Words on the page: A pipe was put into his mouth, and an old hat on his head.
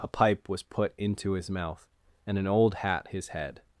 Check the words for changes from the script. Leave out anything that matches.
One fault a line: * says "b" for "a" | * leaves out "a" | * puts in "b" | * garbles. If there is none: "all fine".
* leaves out "on"